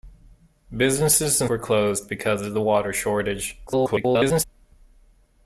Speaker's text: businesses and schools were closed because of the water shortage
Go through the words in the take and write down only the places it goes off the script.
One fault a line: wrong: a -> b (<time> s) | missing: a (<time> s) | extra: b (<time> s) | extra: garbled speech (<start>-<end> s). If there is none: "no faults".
missing: schools (1.5 s)
extra: garbled speech (3.7-4.4 s)